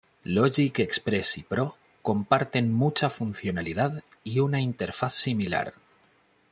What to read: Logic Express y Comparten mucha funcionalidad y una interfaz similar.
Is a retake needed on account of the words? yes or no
yes